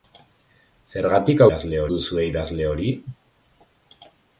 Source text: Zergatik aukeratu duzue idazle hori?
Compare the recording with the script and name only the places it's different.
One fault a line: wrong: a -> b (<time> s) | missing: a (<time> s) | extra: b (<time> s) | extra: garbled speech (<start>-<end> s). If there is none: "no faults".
wrong: aukeratu -> idazle (1.5 s)